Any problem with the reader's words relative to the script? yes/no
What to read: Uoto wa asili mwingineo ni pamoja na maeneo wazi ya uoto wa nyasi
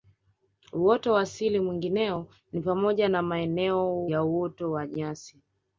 yes